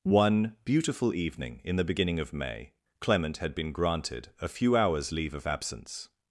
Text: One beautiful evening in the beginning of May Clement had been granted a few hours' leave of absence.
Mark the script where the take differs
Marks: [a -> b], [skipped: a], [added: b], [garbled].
One beautiful evening in the beginning of May Clement had been granted a few hours' leave of absence.